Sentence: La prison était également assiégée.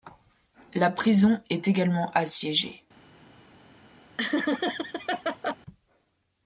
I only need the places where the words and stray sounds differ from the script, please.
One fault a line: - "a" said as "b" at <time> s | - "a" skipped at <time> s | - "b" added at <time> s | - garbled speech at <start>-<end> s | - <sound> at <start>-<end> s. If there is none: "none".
- "était" said as "est" at 1.5 s
- laugh at 4.2-5.6 s